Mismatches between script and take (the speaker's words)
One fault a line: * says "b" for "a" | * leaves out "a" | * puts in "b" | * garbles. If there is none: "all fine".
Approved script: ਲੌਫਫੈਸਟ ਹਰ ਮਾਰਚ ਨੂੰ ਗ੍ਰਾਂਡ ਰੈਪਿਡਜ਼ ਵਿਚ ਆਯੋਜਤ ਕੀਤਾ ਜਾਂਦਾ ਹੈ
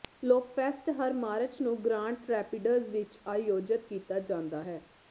all fine